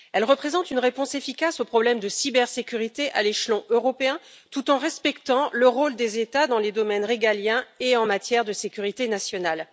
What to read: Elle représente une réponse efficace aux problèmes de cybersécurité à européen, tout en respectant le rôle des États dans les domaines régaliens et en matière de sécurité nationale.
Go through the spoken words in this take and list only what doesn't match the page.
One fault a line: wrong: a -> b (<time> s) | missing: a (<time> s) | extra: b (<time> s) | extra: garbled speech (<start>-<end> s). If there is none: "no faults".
extra: l'échelon (3.2 s)